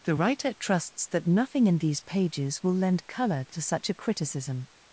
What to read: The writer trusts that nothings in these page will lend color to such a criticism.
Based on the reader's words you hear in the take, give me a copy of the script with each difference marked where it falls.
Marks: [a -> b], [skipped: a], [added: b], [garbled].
The writer trusts that [nothings -> nothing] in these [page -> pages] will lend color to such a criticism.